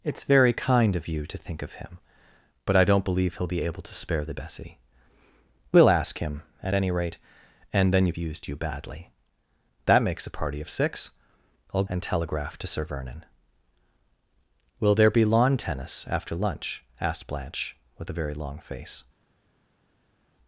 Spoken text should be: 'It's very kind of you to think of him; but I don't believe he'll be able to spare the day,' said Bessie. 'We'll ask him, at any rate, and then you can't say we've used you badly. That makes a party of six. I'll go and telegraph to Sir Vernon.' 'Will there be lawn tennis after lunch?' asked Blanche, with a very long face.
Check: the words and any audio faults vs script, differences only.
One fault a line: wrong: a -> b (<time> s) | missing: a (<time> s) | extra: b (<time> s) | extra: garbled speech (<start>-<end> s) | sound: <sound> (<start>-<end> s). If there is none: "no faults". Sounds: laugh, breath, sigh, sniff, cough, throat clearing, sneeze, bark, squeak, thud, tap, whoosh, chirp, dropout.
missing: day said (4.3 s)
missing: can't say we've (8.1 s)
missing: go (11.8 s)